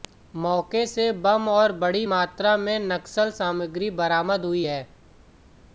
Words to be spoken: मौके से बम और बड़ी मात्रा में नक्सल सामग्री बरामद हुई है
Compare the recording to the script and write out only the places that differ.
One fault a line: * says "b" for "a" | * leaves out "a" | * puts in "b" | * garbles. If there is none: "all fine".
all fine